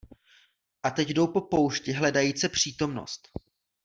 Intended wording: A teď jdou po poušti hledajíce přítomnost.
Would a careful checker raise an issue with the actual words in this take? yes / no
no